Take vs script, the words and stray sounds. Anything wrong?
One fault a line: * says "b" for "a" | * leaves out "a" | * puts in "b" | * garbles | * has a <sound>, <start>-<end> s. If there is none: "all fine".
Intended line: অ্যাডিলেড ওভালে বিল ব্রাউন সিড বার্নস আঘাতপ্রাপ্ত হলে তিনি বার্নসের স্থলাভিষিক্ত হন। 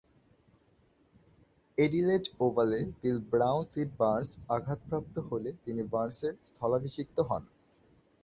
all fine